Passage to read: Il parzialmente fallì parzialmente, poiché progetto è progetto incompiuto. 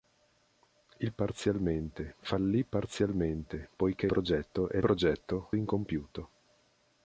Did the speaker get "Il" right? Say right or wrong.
right